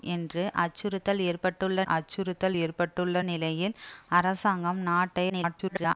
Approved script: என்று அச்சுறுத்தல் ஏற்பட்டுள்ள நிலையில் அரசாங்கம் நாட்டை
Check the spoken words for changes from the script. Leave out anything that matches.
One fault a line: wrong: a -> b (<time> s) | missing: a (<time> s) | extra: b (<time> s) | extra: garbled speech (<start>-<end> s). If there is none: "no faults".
extra: அச்சுறுத்தல் ஏற்பட்டுள்ள (1.9 s)
extra: garbled speech (5.3-6.0 s)